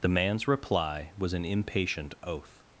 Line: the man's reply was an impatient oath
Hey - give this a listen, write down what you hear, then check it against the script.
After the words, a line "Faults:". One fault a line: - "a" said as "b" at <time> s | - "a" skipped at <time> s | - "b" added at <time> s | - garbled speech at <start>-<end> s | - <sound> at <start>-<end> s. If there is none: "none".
the man's reply was an impatient oath
Faults:
none